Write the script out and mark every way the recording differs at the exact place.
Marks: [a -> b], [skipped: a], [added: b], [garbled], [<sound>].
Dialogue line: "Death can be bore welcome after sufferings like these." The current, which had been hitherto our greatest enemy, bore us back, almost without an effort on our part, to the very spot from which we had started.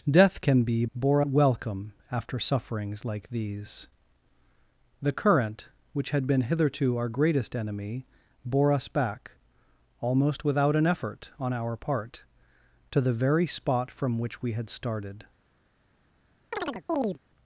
"Death can be bore welcome after sufferings like these." The current, which had been hitherto our greatest enemy, bore us back, almost without an effort on our part, to the very spot from which we had started. [chirp]